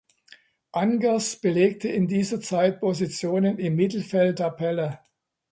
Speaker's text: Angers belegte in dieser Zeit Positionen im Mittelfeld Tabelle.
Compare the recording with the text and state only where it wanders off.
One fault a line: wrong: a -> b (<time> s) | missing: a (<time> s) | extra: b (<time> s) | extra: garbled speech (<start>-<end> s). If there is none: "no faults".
no faults